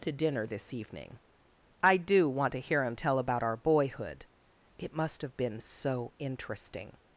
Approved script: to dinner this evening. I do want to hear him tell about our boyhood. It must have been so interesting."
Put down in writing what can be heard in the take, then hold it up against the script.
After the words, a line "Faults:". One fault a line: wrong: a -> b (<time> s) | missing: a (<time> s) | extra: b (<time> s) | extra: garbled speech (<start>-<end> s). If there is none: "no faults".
to dinner this evening. I do want to hear him tell about our boyhood. It must have been so interesting."
Faults:
no faults